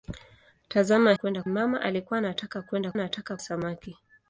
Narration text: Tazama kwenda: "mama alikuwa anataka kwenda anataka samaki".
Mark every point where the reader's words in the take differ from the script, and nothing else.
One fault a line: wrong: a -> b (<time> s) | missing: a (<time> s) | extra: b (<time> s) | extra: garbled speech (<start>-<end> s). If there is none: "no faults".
no faults